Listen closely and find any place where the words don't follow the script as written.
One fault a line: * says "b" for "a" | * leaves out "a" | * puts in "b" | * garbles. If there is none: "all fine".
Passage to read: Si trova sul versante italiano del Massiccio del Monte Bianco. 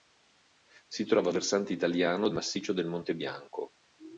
* leaves out "sul"
* leaves out "del"